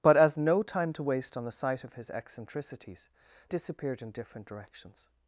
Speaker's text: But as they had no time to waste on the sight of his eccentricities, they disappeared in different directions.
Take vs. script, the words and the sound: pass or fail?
fail